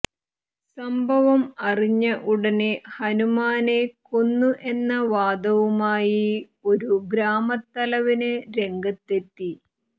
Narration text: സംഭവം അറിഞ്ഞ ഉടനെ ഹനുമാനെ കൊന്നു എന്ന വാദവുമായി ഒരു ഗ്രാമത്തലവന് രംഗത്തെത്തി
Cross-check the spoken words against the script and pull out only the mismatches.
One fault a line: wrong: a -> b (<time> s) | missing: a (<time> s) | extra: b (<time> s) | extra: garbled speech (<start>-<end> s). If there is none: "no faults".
no faults